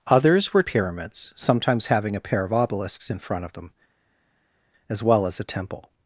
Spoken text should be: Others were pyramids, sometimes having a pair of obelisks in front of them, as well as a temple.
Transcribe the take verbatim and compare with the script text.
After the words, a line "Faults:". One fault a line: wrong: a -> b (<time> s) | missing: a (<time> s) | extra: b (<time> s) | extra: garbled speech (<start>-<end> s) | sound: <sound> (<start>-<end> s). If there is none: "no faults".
Others were pyramids, sometimes having a pair of obelisks in front of them, as well as a temple.
Faults:
no faults